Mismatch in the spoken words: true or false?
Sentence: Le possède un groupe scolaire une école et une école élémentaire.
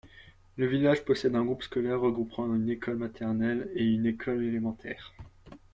true